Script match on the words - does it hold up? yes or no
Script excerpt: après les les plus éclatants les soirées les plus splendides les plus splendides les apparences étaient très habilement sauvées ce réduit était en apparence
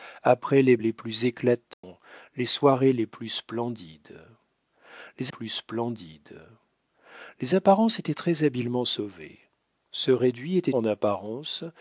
yes